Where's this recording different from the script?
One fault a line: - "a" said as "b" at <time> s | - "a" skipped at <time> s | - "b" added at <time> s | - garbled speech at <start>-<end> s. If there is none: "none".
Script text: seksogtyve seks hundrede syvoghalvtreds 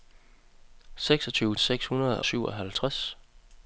none